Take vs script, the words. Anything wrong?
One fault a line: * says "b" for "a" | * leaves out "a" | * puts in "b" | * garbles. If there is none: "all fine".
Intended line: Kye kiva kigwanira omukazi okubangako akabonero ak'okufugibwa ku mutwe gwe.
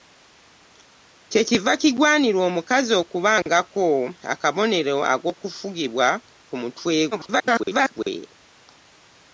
* garbles